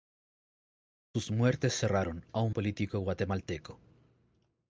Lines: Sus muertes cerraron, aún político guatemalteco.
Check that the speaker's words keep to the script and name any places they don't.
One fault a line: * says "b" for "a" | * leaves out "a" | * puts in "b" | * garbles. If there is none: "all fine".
all fine